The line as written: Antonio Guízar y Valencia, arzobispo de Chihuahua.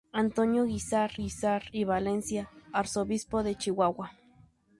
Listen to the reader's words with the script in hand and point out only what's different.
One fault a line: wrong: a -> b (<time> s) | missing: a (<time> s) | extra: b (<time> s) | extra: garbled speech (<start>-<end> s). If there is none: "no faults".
extra: Guízar (1.1 s)